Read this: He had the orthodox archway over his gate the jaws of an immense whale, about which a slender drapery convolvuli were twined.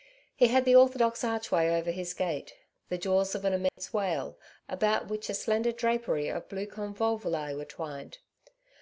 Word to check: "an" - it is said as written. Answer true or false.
true